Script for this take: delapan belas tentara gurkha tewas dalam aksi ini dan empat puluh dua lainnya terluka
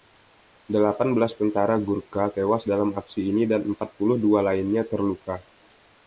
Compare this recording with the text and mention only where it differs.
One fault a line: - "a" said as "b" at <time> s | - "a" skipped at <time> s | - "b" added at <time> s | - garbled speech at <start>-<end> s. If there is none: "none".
none